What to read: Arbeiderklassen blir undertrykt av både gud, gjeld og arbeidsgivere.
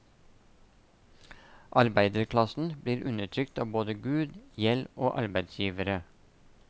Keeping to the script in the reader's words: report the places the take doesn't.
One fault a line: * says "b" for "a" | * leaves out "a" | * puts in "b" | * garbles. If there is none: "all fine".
all fine